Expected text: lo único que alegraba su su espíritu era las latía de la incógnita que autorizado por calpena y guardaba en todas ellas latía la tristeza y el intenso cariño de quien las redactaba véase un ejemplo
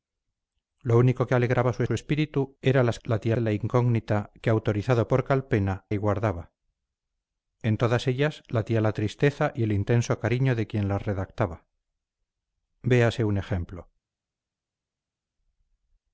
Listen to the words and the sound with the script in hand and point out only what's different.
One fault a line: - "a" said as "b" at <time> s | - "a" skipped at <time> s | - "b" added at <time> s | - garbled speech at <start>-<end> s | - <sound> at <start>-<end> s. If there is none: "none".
none